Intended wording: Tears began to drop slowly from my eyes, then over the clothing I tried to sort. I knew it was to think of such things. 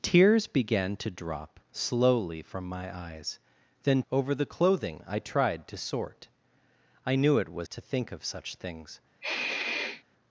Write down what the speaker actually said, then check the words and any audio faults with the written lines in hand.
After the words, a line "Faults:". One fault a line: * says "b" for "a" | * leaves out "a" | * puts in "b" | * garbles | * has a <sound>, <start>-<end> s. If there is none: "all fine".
Tears began to drop slowly from my eyes, then over the clothing I tried to sort. I knew it was to think of such things.
Faults:
* has a sniff, 9.2-10.0 s